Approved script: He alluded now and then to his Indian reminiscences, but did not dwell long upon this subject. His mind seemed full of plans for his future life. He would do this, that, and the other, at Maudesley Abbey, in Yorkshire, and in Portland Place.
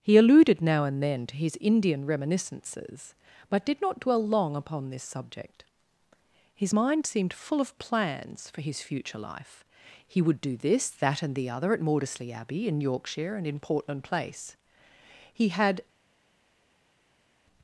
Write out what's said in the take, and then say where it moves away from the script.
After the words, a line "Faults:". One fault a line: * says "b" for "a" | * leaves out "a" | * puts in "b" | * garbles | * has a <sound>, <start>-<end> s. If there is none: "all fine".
He alluded now and then to his Indian reminiscences, but did not dwell long upon this subject. His mind seemed full of plans for his future life. He would do this, that, and the other, at Maudesley Abbey, in Yorkshire, and in Portland Place. He had
Faults:
* puts in "He had"